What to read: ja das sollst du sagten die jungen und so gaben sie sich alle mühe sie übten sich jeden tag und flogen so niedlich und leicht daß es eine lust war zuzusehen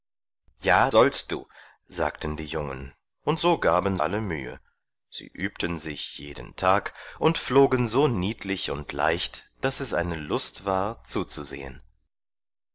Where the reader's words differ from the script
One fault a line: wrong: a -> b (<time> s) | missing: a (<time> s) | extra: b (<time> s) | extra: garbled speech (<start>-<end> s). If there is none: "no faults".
missing: das (0.9 s)
missing: sie sich (4.0 s)